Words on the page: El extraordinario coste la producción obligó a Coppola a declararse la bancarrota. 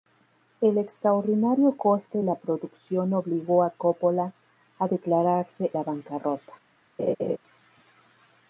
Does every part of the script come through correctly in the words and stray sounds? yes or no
no